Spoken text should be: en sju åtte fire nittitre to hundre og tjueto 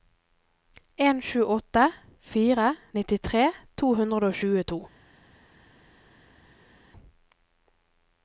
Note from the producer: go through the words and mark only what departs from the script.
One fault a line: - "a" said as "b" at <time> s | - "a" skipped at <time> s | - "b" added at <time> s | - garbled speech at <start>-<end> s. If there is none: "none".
none